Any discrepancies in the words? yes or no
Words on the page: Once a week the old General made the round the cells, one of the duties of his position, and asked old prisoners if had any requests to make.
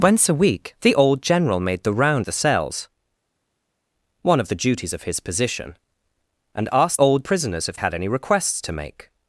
no